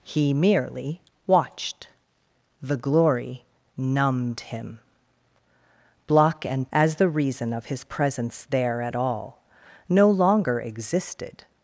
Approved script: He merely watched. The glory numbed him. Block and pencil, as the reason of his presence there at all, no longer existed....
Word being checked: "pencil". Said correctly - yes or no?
no